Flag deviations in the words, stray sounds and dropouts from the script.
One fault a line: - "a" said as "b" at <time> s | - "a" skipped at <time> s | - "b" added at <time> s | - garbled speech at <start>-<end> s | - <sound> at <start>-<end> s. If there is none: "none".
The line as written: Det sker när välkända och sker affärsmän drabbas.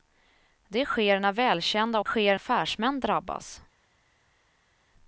none